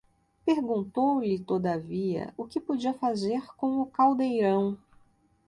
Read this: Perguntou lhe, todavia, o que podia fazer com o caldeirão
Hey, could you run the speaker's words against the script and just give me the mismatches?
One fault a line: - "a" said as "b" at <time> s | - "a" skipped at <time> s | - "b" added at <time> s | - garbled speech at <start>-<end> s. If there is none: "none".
none